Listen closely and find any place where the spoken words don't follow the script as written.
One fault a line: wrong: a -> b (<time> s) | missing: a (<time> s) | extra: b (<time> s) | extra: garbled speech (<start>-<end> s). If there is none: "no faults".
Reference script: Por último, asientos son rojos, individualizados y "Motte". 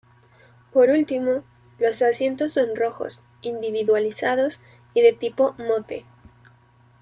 extra: los (1.8 s)
extra: de tipo (5.0 s)